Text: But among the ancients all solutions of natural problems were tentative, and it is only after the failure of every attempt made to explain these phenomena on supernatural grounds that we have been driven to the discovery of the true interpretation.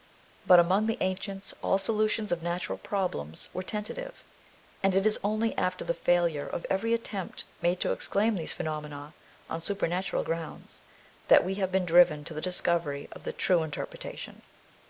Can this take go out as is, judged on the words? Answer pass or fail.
pass